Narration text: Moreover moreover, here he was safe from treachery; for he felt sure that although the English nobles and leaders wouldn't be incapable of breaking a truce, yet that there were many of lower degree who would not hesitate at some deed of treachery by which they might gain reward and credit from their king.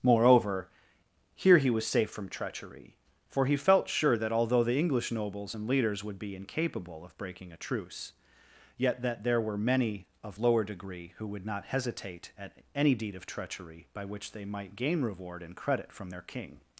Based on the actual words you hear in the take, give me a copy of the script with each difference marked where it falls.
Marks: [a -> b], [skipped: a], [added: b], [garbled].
Moreover [skipped: moreover,] here he was safe from treachery; for he felt sure that although the English nobles and leaders [wouldn't -> would] be incapable of breaking a truce, yet that there were many of lower degree who would not hesitate at [some -> any] deed of treachery by which they might gain reward and credit from their king.